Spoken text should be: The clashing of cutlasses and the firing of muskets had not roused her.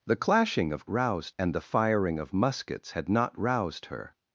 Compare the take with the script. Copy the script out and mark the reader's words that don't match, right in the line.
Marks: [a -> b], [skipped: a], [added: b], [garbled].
The clashing of [cutlasses -> roused] and the firing of muskets had not roused her.